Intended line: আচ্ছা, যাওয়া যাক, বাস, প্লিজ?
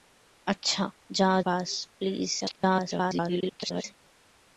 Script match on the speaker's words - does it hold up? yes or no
no